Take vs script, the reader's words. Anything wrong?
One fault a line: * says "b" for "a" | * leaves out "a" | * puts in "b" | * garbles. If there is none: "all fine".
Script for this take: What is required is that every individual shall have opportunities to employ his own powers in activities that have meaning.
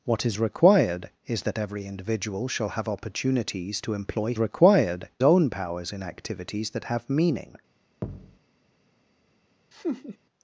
* says "required" for "his"